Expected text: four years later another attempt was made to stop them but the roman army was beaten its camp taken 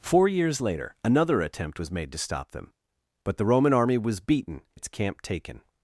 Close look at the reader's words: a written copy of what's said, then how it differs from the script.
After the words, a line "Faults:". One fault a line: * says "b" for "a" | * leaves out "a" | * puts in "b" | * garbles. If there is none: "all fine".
four years later another attempt was made to stop them but the roman army was beaten its camp taken
Faults:
all fine